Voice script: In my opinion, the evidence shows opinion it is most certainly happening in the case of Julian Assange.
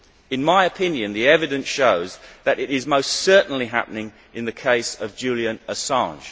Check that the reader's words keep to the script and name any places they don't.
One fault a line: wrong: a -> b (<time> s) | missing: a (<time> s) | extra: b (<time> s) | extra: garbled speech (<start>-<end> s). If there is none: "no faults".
wrong: opinion -> that (2.4 s)